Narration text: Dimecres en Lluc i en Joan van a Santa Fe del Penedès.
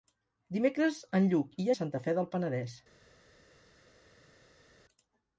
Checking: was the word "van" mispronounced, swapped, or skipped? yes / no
yes